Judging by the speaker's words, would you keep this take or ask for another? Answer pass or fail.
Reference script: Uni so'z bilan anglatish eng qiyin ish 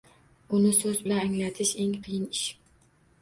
pass